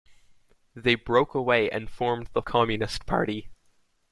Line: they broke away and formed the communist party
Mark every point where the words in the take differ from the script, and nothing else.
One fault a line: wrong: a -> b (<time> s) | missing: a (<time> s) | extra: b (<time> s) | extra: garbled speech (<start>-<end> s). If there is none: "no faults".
no faults